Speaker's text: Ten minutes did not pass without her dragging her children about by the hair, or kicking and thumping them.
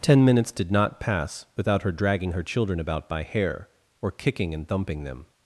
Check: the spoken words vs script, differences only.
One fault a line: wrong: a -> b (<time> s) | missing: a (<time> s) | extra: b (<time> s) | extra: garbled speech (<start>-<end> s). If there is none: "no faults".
missing: the (3.2 s)